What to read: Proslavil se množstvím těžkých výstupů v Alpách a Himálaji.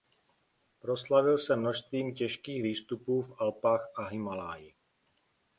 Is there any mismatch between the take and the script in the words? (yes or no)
no